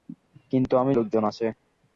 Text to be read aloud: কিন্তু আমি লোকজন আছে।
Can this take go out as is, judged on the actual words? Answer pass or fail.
pass